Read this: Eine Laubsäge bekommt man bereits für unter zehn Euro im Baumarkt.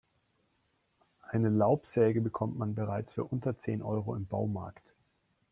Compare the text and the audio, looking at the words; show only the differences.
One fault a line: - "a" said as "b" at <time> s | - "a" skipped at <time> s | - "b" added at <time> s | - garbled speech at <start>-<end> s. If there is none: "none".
none